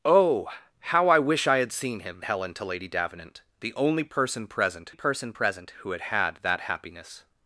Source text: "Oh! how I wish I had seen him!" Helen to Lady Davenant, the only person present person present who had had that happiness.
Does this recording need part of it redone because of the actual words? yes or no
no